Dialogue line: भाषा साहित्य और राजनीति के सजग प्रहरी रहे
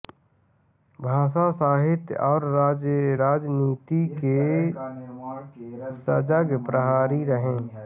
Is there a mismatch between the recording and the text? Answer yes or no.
no